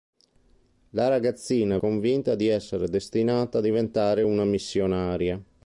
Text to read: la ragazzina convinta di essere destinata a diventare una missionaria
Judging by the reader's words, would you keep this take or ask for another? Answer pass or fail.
pass